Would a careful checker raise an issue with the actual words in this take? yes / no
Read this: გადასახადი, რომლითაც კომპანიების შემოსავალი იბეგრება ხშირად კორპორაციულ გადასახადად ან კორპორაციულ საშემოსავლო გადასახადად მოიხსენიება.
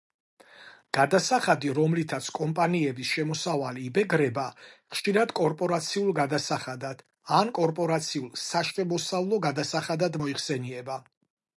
no